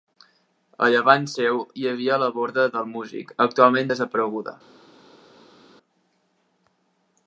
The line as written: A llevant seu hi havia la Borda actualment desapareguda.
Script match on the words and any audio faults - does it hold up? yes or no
no